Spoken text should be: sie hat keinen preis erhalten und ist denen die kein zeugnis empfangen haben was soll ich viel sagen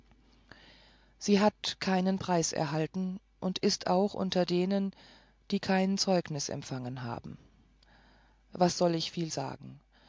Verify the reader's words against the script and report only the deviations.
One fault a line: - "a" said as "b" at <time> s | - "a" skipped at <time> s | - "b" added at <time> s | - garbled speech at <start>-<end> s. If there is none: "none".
- "auch unter" added at 3.9 s